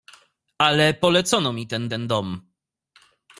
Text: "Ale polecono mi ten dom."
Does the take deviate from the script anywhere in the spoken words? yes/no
yes